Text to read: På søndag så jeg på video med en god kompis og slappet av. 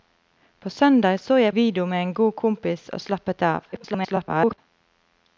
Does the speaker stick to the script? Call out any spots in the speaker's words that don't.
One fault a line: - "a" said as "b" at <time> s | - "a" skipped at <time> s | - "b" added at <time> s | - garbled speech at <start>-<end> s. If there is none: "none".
- "på" skipped at 1.6 s
- garbled speech at 3.7-4.6 s